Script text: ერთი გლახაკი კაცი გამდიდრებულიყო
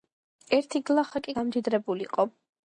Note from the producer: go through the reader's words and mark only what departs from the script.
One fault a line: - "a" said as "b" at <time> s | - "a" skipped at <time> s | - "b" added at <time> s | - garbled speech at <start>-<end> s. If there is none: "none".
- "კაცი" skipped at 1.4 s